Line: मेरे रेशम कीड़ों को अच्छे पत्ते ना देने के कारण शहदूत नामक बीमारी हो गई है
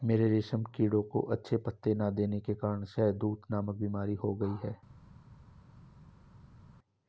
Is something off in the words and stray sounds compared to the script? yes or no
no